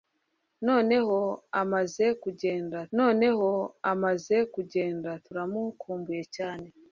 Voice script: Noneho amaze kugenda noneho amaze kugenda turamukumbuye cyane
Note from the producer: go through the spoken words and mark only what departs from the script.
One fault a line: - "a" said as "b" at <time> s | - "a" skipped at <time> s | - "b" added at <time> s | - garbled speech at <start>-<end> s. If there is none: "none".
none